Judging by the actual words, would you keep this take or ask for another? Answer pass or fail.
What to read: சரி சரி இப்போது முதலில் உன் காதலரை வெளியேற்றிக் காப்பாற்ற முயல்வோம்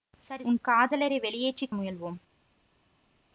fail